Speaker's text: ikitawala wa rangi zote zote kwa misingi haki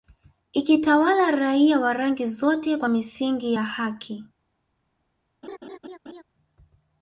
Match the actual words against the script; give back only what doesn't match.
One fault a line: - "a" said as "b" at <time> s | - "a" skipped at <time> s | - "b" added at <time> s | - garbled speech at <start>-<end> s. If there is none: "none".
- "raia" added at 1.3 s
- "zote" skipped at 2.8 s
- "ya" added at 3.5 s